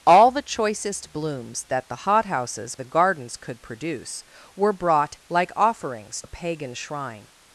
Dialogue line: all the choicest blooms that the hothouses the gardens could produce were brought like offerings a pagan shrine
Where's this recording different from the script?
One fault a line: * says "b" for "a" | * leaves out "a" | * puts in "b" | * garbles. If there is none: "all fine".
all fine